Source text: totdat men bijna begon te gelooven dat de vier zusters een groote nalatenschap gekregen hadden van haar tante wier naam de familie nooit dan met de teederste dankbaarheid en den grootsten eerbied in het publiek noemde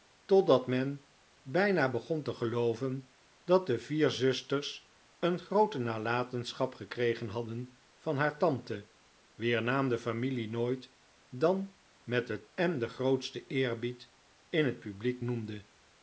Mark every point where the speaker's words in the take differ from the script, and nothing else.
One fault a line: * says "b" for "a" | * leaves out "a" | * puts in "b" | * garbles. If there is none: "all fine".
* leaves out "teederste dankbaarheid"